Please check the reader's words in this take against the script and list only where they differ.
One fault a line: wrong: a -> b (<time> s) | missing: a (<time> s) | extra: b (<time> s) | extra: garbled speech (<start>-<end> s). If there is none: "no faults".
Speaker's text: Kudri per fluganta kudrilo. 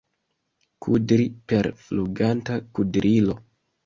no faults